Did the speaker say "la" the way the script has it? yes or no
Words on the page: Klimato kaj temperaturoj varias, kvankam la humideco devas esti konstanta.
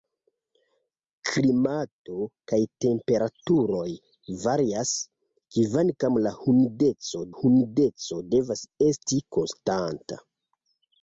yes